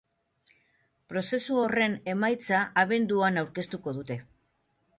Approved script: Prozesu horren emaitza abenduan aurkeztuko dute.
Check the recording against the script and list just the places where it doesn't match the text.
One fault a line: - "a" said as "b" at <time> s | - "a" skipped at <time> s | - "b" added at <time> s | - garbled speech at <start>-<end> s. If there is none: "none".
none